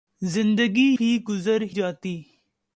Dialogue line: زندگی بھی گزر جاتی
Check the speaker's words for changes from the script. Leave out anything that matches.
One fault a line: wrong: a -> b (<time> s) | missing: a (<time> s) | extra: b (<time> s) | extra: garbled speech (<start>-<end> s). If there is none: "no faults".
no faults